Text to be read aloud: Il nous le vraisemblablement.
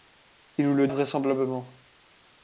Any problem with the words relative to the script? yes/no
no